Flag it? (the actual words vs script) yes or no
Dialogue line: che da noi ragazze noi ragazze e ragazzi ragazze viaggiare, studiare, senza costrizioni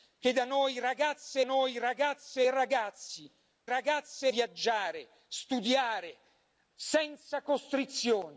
no